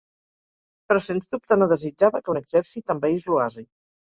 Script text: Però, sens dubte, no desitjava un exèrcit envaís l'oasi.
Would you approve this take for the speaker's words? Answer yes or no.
no